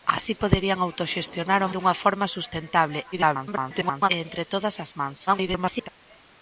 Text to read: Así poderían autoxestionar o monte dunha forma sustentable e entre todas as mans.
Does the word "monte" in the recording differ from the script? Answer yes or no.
yes